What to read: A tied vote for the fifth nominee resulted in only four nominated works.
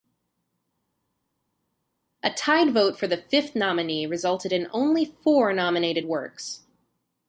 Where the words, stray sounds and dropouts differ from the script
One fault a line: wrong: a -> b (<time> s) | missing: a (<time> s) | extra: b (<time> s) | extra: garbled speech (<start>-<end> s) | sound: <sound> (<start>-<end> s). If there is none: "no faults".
no faults